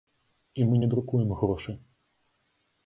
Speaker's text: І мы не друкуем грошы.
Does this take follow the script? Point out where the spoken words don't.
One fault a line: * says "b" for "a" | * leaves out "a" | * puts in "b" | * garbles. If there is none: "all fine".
all fine